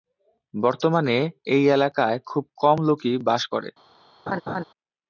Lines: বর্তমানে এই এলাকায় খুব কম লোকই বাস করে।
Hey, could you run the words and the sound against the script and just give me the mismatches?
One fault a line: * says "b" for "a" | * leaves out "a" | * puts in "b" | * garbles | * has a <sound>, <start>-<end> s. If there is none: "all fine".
* has a laugh, 4.3-4.6 s